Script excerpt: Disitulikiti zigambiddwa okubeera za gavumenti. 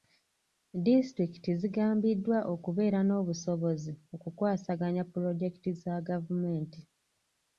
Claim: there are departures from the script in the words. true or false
true